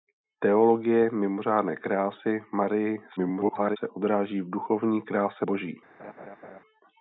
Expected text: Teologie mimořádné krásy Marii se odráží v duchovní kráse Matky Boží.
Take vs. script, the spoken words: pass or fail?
fail